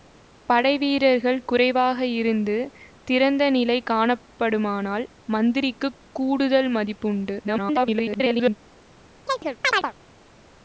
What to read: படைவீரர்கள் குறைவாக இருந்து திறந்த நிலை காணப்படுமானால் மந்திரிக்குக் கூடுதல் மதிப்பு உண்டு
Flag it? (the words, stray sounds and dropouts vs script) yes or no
yes